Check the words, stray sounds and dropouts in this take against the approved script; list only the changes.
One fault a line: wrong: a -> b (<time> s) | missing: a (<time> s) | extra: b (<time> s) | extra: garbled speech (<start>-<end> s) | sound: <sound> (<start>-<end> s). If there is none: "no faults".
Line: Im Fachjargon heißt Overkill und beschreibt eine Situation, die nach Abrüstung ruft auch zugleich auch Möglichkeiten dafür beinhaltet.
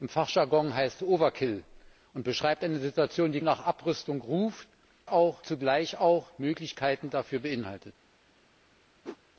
sound: whoosh (9.0-9.2 s)